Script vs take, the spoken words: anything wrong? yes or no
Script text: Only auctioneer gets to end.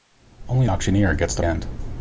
no